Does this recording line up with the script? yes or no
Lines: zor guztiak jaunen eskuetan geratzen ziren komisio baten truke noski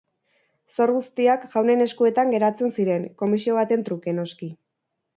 yes